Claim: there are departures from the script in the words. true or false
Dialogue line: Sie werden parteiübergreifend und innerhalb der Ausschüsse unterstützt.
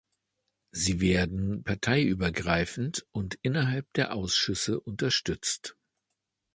false